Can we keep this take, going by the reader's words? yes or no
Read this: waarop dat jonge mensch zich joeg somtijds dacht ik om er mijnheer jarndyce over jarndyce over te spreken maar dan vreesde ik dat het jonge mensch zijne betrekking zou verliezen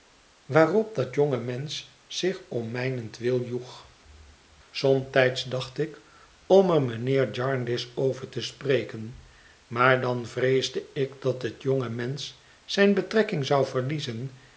no